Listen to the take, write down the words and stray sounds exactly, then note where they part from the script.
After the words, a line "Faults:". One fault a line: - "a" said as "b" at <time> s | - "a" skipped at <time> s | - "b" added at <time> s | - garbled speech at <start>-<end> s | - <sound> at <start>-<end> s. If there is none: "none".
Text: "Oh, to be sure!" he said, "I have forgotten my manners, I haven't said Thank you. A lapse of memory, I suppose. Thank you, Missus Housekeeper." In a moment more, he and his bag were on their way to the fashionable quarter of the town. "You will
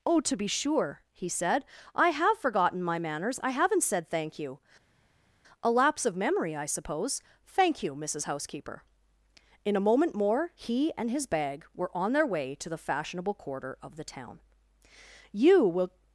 "Oh, to be sure!" he said, "I have forgotten my manners, I haven't said Thank you. A lapse of memory, I suppose. Thank you, Missus Housekeeper." In a moment more, he and his bag were on their way to the fashionable quarter of the town. "You will
Faults:
none